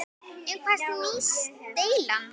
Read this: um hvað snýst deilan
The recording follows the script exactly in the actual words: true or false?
true